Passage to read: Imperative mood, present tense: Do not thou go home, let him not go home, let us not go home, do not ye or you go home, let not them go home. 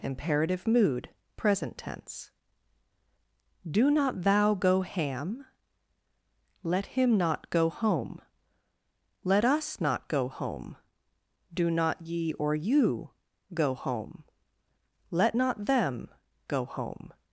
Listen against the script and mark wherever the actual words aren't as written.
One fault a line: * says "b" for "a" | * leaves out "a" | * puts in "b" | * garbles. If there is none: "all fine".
* says "ham" for "home"